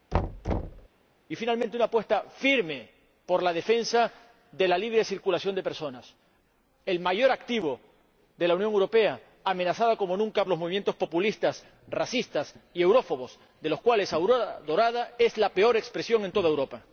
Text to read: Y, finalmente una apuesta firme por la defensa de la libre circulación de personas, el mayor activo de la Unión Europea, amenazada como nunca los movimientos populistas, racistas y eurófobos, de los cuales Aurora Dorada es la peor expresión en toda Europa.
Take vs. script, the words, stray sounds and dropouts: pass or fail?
fail